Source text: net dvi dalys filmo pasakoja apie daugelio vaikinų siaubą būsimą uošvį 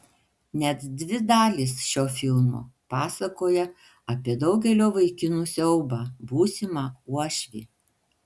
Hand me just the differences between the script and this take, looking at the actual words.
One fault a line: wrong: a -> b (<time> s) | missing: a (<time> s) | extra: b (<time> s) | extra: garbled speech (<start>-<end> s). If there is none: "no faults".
extra: šio (1.9 s)